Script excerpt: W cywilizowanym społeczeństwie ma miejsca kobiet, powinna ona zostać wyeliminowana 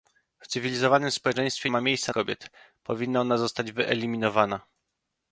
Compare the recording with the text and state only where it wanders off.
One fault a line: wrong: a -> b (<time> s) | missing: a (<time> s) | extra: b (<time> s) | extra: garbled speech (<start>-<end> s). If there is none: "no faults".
no faults